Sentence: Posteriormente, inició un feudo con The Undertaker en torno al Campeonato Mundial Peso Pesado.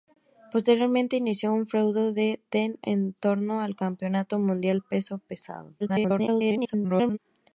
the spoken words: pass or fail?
fail